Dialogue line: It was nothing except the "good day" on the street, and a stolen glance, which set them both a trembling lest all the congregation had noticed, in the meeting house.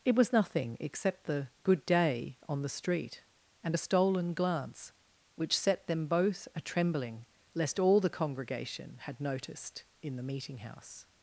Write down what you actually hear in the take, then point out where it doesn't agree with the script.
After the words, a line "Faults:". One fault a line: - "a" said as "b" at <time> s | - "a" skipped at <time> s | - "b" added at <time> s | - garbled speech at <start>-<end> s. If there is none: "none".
It was nothing except the "good day" on the street, and a stolen glance, which set them both a trembling lest all the congregation had noticed, in the meeting house.
Faults:
none